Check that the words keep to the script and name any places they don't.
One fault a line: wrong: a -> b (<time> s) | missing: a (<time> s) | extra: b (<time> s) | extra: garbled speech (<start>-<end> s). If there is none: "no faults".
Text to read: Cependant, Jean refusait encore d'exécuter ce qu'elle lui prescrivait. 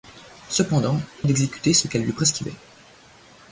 missing: Jean refusait encore (1.0 s)